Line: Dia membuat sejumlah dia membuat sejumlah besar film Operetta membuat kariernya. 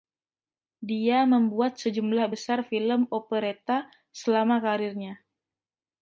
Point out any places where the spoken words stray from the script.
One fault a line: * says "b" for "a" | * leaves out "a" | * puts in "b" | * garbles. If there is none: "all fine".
* leaves out "dia membuat sejumlah"
* says "selama" for "membuat"